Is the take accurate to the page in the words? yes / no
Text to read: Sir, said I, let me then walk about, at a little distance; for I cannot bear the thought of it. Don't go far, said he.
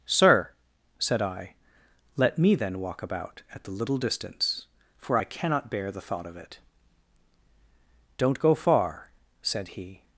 no